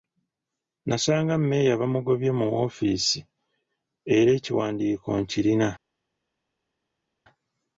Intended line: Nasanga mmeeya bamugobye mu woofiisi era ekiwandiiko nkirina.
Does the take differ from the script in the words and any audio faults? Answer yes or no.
no